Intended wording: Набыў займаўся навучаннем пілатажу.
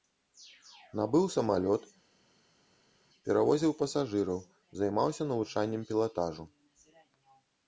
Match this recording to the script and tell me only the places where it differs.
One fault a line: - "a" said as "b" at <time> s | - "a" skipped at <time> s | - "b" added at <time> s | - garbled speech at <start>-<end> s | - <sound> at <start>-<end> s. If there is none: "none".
- "самалёт перавозіў пасажыраў" added at 1.4 s